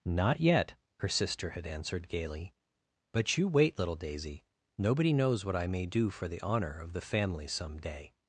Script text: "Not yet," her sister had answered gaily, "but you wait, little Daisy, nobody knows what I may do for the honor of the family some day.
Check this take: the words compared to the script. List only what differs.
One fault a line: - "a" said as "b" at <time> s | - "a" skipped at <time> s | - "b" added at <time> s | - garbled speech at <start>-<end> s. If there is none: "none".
none